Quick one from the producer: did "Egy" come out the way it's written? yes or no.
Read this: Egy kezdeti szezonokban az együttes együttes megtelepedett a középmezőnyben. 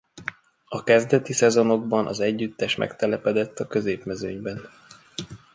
no